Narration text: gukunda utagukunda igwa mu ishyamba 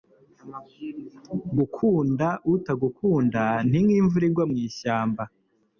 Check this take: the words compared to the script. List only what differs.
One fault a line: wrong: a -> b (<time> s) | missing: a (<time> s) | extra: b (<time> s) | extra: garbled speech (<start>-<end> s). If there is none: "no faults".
extra: ni nk'imvura (3.7 s)